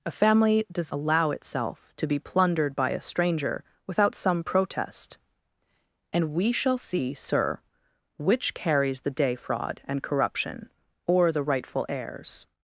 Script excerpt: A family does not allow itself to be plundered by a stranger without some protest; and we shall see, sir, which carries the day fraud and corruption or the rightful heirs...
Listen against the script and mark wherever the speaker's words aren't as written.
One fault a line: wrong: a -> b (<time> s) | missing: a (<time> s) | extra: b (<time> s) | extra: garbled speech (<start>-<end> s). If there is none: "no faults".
missing: not (0.9 s)